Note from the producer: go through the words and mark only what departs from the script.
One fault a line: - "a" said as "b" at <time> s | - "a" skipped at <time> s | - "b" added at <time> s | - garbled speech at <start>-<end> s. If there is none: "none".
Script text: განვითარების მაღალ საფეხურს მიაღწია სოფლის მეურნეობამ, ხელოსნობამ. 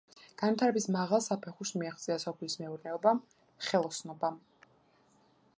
none